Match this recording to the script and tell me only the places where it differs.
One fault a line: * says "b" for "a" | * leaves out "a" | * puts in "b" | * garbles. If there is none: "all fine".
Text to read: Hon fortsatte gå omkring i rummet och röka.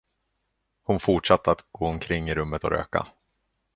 * puts in "att"